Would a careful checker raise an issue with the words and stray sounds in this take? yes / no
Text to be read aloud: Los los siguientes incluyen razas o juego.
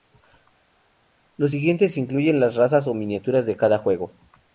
yes